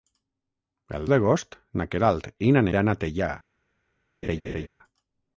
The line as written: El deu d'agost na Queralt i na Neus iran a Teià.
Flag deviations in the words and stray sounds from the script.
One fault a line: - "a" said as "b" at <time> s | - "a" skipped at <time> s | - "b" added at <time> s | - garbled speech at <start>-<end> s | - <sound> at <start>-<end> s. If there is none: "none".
- "deu" skipped at 1.1 s
- "Neus" skipped at 2.7 s
- laugh at 4.2-4.7 s